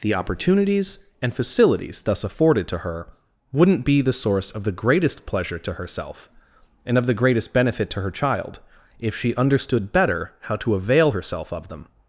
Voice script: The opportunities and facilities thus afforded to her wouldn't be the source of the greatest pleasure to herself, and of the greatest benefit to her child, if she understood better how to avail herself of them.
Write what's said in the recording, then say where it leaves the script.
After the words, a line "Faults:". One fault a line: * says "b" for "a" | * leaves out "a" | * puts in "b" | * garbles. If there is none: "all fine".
The opportunities and facilities thus afforded to her wouldn't be the source of the greatest pleasure to herself, and of the greatest benefit to her child, if she understood better how to avail herself of them.
Faults:
all fine